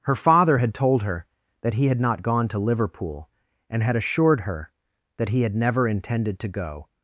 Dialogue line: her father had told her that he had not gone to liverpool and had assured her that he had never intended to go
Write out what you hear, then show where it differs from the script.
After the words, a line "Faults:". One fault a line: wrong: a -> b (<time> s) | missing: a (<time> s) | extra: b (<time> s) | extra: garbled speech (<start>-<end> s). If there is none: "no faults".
her father had told her that he had not gone to liverpool and had assured her that he had never intended to go
Faults:
no faults